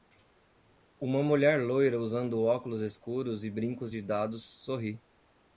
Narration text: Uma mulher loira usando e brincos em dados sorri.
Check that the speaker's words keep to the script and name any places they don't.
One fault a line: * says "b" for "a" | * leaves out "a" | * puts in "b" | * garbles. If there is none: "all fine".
* puts in "óculos escuros"
* says "de" for "em"